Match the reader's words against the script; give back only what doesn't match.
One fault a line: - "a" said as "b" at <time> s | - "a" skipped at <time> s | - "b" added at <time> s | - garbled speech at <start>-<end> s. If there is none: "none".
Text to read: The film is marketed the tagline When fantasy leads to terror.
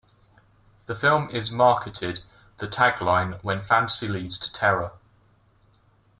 none